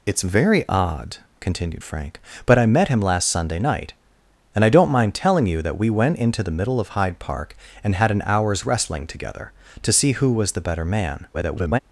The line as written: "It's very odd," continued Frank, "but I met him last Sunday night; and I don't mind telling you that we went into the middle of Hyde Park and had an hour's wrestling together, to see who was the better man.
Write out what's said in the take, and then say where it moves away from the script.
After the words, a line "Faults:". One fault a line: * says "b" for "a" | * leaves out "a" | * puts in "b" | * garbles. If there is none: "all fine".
"It's very odd," continued Frank, "but I met him last Sunday night; and I don't mind telling you that we went into the middle of Hyde Park and had an hour's wrestling together, to see who was the better man. [garbled]
Faults:
* garbles